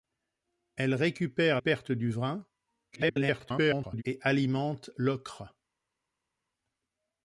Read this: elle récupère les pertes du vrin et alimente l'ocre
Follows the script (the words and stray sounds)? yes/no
no